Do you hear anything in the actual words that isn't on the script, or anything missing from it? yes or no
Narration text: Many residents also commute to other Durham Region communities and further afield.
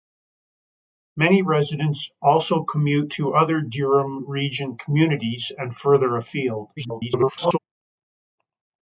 yes